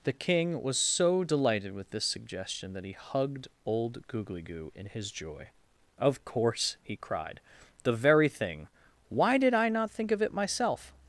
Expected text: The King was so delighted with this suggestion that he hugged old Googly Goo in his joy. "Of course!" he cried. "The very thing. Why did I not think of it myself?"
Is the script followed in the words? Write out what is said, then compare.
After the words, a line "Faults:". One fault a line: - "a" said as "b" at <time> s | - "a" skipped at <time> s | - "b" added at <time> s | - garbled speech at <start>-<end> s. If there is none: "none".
The King was so delighted with this suggestion that he hugged old Googly Goo in his joy. "Of course!" he cried. "The very thing. Why did I not think of it myself?"
Faults:
none